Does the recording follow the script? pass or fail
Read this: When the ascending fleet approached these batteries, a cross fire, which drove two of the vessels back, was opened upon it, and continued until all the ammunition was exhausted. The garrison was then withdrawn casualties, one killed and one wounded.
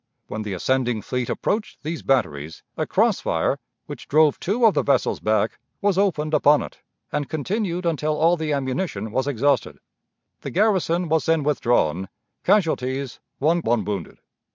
fail